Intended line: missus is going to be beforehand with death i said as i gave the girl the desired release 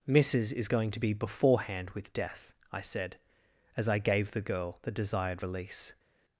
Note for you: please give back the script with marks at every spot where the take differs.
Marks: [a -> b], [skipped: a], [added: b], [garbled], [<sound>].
missus is going to be beforehand with death i said as i gave the girl the desired release